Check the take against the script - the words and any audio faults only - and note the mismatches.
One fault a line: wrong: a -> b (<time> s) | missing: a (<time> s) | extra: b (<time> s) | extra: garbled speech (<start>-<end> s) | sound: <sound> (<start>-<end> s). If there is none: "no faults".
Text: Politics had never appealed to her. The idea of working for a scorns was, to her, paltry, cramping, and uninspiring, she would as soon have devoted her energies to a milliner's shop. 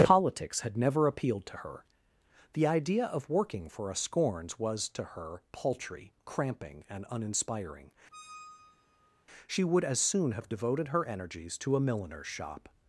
sound: squeak (8.1-9.3 s)